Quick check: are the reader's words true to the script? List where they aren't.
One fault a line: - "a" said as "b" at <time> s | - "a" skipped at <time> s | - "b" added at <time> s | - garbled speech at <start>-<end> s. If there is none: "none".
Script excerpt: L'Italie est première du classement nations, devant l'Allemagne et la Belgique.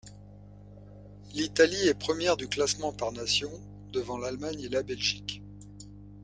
- "par" added at 2.9 s